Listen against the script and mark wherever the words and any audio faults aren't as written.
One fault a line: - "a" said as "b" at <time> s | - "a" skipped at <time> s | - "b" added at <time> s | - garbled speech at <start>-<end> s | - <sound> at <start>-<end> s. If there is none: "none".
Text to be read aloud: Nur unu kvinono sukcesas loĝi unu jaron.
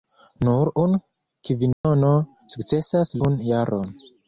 - dropout at 1.7-1.8 s
- "loĝi" skipped at 3.1 s